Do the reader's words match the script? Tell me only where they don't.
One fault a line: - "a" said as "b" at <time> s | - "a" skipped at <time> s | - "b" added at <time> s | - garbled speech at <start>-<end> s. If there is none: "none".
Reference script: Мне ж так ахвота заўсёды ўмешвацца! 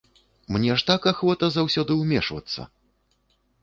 none